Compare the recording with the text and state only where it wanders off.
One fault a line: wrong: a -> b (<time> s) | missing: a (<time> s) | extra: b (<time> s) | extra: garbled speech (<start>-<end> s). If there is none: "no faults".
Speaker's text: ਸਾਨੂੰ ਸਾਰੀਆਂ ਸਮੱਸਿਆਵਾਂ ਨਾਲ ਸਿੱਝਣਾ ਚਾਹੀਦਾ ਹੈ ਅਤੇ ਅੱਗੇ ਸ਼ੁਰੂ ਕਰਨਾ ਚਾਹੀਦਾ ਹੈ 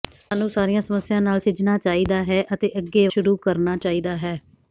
no faults